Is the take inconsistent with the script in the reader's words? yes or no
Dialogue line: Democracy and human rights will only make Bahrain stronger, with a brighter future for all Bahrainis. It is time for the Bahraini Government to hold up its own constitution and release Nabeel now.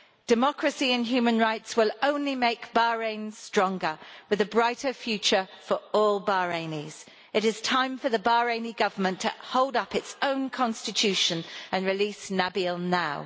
no